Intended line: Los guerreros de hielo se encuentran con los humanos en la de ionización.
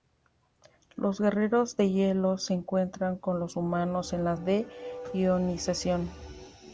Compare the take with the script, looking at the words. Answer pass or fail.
pass